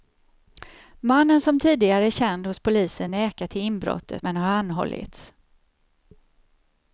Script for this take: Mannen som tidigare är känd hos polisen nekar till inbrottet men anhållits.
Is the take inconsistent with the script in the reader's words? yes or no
yes